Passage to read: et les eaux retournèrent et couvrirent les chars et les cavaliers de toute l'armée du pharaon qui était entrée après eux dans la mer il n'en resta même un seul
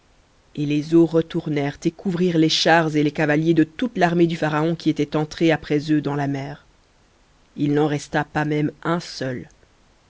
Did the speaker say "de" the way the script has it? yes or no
yes